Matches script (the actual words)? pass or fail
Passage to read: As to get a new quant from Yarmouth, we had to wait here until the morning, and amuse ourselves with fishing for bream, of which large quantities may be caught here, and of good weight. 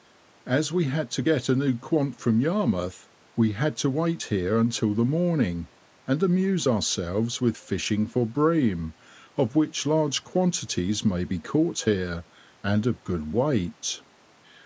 fail